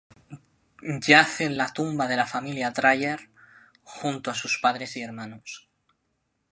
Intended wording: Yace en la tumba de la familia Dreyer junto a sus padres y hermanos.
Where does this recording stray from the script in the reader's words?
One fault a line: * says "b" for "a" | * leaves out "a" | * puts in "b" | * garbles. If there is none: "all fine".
all fine